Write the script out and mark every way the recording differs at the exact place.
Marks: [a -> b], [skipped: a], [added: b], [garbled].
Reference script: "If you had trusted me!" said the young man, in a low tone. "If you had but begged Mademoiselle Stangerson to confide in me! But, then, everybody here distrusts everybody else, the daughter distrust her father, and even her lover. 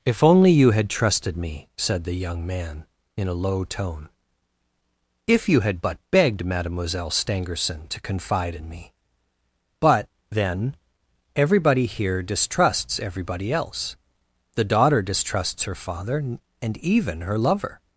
"If [added: only] you had trusted me!" said the young man, in a low tone. "If you had but begged Mademoiselle Stangerson to confide in me! But, then, everybody here distrusts everybody else, the daughter [distrust -> distrusts] her father, and even her lover.